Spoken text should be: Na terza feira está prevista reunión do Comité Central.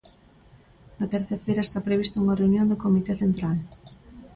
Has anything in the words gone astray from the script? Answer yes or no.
yes